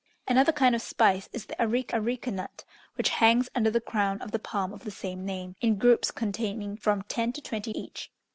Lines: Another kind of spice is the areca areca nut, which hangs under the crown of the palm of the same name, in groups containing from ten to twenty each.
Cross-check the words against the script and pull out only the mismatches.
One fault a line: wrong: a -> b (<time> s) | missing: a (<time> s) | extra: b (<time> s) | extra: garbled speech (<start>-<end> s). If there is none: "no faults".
no faults